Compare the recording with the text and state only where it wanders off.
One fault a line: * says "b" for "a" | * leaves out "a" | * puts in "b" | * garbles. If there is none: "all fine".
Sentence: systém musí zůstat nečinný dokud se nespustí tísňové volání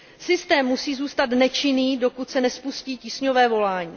all fine